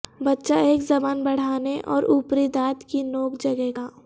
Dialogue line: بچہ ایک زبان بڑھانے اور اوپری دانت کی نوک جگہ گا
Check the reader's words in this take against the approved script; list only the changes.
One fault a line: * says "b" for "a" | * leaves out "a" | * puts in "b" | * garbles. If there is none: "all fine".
all fine